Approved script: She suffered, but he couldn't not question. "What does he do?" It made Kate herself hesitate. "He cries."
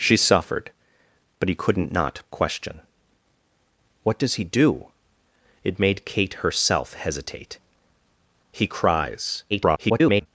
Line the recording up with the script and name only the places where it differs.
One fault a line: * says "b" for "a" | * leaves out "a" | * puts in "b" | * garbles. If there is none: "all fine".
* garbles